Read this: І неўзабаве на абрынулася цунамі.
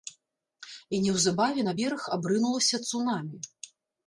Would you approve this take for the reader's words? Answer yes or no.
no